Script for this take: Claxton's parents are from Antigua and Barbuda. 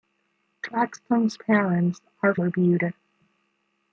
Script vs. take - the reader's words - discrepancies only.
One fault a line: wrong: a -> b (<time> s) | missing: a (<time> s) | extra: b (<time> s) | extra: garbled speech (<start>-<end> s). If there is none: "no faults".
missing: from Antigua and (2.3 s)